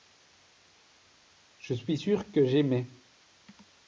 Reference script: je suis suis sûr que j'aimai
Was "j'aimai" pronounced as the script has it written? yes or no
yes